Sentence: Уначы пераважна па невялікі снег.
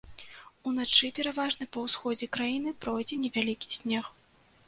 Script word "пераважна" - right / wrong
right